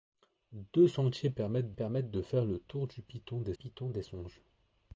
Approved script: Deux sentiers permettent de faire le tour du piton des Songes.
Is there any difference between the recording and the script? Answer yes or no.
yes